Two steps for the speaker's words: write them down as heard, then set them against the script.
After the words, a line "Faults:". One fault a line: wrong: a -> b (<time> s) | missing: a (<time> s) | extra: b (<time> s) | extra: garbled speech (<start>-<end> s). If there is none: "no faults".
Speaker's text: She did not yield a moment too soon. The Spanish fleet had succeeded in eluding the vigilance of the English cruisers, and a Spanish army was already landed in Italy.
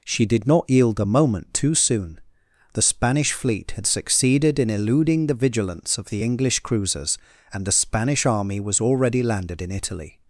She did not yield a moment too soon. The Spanish fleet had succeeded in eluding the vigilance of the English cruisers, and the Spanish army was already landed in Italy.
Faults:
wrong: a -> the (7.7 s)